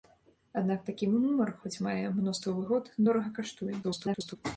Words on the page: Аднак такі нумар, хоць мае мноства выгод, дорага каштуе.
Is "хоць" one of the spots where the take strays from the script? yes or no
no